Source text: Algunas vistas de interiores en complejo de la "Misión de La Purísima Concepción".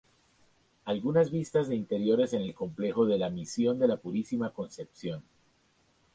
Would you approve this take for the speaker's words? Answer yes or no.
no